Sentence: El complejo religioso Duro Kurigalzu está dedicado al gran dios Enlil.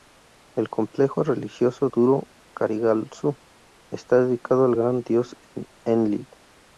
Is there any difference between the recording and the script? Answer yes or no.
no